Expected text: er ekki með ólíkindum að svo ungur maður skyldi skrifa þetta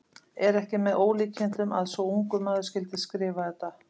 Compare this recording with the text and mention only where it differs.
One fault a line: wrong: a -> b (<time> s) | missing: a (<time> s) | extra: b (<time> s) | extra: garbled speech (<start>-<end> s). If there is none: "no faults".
no faults